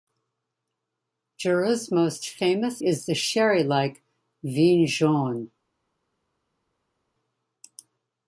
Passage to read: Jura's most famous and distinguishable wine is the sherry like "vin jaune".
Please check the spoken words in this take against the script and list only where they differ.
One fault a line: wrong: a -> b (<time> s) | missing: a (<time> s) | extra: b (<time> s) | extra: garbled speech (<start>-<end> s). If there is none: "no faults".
missing: and distinguishable wine (2.8 s)